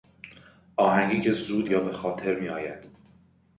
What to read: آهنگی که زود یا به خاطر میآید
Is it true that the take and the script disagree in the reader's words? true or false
false